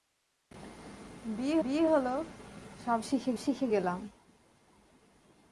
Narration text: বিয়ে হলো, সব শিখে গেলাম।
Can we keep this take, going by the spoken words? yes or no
no